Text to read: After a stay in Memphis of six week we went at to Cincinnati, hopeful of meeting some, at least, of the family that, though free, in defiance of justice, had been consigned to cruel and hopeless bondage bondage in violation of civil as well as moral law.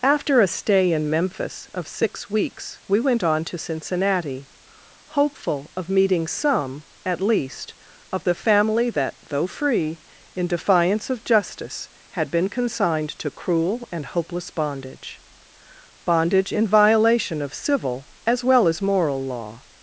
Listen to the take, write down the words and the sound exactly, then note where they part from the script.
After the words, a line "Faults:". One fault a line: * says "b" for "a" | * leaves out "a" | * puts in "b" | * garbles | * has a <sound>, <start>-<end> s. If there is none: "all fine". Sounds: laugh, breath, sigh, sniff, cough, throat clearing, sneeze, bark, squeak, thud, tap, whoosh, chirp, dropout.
After a stay in Memphis of six weeks we went on to Cincinnati, hopeful of meeting some, at least, of the family that, though free, in defiance of justice, had been consigned to cruel and hopeless bondage bondage in violation of civil as well as moral law.
Faults:
* says "weeks" for "week"
* says "on" for "at"